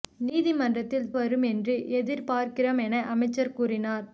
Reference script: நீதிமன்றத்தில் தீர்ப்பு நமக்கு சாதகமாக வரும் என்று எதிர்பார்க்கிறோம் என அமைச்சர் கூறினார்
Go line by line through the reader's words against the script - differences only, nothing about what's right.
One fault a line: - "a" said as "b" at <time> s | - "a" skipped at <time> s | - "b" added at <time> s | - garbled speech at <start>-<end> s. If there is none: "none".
- "தீர்ப்பு நமக்கு சாதகமாக" skipped at 1.1 s